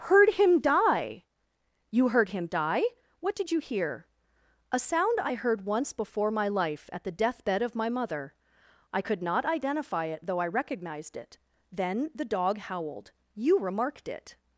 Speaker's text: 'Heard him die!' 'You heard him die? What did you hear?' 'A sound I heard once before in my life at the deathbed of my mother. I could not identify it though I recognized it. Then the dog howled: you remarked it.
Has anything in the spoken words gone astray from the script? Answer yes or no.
yes